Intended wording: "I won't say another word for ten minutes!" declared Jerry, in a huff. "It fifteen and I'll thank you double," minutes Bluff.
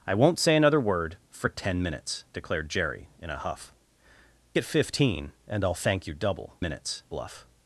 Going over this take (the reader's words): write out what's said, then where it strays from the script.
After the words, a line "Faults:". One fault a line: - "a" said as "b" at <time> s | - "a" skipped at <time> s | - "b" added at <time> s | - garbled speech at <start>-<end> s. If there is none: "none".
"I won't say another word for ten minutes!" declared Jerry, in a huff. "It fifteen and I'll thank you double," minutes Bluff.
Faults:
none